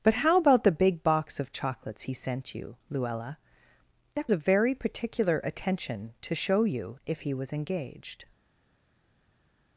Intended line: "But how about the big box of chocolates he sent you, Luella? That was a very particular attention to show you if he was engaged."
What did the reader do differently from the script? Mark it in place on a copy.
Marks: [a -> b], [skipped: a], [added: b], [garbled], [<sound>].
"But how about the big box of chocolates he sent you, Luella? That [skipped: was] a very particular attention to show you if he was engaged."